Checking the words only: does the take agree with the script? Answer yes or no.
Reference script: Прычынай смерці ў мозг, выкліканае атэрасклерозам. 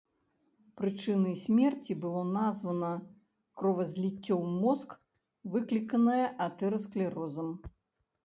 no